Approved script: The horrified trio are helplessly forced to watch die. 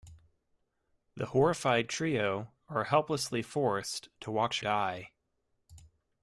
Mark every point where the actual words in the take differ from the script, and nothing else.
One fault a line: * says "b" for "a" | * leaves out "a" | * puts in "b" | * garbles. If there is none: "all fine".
all fine